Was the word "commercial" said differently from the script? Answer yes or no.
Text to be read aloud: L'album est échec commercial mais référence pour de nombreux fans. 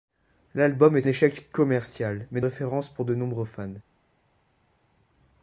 no